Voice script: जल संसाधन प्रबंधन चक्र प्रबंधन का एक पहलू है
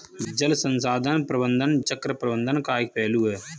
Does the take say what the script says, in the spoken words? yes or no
yes